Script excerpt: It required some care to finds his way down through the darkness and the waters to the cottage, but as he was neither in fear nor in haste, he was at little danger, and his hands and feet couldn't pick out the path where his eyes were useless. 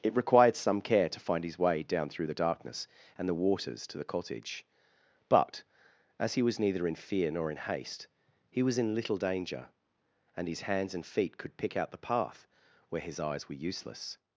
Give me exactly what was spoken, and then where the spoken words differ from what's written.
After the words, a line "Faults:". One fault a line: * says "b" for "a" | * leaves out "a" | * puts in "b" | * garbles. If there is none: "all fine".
It required some care to find his way down through the darkness and the waters to the cottage, but as he was neither in fear nor in haste, he was in little danger, and his hands and feet could pick out the path where his eyes were useless.
Faults:
* says "find" for "finds"
* says "in" for "at"
* says "could" for "couldn't"